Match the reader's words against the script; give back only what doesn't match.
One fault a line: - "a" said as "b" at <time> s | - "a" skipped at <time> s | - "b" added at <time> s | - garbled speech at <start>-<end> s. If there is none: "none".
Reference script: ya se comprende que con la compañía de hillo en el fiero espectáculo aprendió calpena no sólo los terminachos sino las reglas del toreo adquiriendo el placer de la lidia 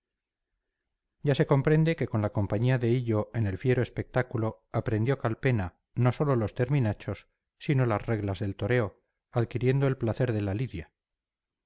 none